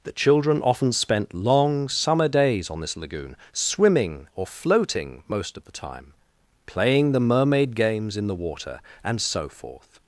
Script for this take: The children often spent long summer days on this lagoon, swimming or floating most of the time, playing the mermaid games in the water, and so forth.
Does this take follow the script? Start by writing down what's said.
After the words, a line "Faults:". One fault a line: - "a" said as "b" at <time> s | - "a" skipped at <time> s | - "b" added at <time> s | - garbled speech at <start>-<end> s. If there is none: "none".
The children often spent long summer days on this lagoon, swimming or floating most of the time, playing the mermaid games in the water, and so forth.
Faults:
none